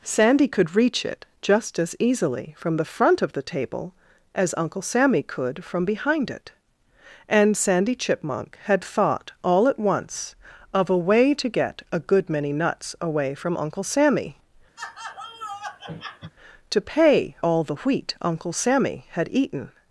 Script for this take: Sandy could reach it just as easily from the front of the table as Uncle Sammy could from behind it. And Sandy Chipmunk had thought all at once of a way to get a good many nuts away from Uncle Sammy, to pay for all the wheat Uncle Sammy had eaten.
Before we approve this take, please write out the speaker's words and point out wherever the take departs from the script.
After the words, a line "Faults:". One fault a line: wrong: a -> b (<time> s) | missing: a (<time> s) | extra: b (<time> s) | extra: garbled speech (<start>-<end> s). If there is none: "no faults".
Sandy could reach it just as easily from the front of the table as Uncle Sammy could from behind it. And Sandy Chipmunk had thought all at once of a way to get a good many nuts away from Uncle Sammy, to pay all the wheat Uncle Sammy had eaten.
Faults:
missing: for (17.3 s)